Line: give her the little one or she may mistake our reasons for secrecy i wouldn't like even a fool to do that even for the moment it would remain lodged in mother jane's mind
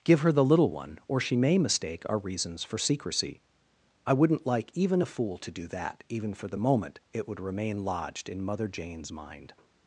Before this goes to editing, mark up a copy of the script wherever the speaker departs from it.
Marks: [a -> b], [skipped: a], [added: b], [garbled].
give her the little one or she may mistake our reasons for secrecy i wouldn't like even a fool to do that even for the moment it would remain lodged in mother jane's mind